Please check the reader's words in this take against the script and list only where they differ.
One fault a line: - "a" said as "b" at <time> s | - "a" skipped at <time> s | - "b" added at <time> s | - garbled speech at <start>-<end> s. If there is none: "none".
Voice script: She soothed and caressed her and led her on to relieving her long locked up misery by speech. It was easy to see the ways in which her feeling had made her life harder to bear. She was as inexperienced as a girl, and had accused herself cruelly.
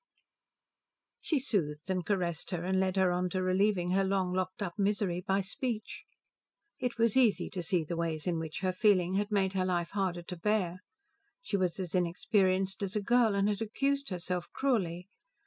none